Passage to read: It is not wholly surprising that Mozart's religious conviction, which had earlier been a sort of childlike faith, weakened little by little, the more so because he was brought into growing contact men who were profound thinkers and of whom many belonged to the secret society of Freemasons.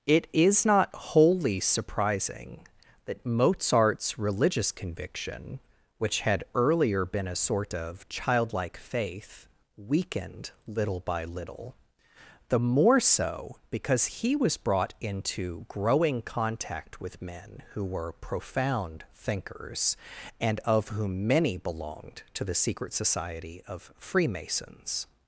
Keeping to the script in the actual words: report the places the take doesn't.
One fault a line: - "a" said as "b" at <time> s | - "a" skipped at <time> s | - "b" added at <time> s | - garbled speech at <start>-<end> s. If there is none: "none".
- "with" added at 17.0 s